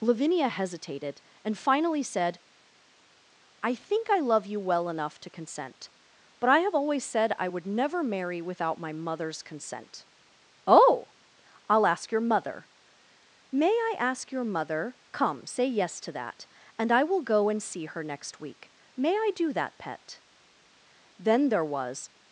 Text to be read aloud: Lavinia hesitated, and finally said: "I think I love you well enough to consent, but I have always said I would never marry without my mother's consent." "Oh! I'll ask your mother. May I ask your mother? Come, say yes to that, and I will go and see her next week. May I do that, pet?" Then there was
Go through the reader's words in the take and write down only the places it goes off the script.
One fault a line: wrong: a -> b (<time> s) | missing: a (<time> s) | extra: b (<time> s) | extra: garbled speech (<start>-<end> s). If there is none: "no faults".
no faults